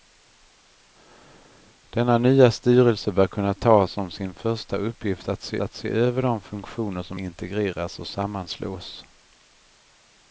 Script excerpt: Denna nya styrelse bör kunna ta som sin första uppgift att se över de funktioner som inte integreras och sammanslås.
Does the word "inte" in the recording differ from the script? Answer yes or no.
yes